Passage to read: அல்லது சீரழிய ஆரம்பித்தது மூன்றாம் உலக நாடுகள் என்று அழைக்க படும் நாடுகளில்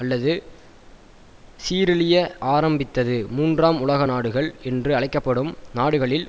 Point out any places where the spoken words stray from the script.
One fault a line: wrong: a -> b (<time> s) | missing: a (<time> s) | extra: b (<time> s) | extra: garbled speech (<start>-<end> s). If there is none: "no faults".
no faults